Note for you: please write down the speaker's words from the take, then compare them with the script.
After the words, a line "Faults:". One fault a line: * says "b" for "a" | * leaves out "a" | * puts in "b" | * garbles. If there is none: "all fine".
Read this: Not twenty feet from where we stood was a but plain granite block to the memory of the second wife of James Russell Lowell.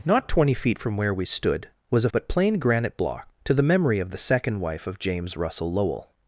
Not twenty feet from where we stood was a but plain granite block to the memory of the second wife of James Russell Lowell.
Faults:
all fine